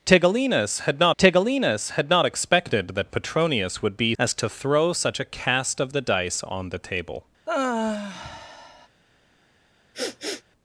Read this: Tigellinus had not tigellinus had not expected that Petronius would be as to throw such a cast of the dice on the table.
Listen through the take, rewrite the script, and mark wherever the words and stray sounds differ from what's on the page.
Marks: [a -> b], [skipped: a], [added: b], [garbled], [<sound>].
Tigellinus had not tigellinus had not expected that Petronius would be as to throw such a cast of the dice on the table. [sigh] [sniff]